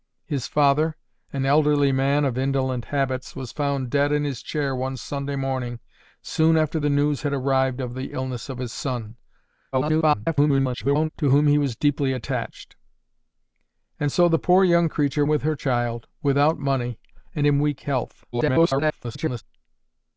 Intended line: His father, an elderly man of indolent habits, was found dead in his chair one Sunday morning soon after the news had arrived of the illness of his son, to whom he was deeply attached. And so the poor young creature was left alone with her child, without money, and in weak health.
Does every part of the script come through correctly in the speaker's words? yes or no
no